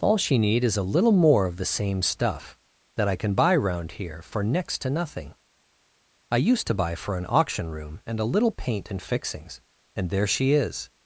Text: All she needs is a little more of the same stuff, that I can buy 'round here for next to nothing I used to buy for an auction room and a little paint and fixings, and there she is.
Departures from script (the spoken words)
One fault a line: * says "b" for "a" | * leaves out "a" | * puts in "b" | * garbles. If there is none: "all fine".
* says "need" for "needs"